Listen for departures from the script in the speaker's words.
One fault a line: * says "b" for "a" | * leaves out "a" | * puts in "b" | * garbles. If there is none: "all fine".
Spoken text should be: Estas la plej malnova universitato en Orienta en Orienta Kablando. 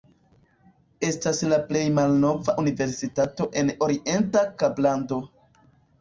* leaves out "en Orienta"